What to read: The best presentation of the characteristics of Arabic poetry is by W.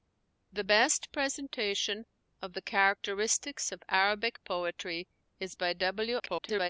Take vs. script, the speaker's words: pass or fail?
fail